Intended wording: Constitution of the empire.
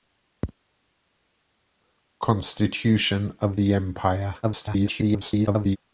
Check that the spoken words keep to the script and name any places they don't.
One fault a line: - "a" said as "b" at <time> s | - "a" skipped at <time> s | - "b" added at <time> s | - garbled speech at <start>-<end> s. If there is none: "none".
- garbled speech at 4.4-5.8 s